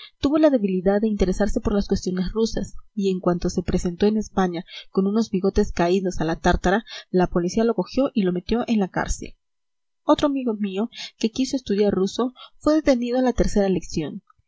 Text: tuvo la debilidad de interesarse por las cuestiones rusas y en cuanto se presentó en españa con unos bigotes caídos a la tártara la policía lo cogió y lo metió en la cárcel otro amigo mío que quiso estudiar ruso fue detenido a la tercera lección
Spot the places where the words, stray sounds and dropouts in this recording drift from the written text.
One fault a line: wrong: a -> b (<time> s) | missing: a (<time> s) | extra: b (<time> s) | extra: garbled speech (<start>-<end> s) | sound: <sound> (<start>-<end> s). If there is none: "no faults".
no faults